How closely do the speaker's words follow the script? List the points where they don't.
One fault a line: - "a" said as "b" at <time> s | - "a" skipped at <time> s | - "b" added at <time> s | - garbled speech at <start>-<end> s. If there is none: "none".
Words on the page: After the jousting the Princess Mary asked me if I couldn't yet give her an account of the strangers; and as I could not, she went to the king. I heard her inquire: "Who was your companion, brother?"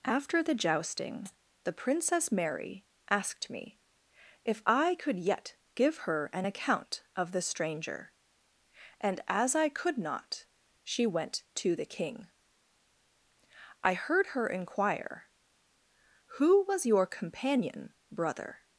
- "couldn't" said as "could" at 5.0 s
- "strangers" said as "stranger" at 7.4 s